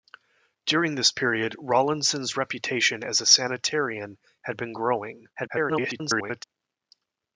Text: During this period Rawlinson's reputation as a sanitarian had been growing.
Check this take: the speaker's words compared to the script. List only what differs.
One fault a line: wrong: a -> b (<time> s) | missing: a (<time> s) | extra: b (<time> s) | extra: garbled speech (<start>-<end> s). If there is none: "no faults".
extra: garbled speech (5.3-6.4 s)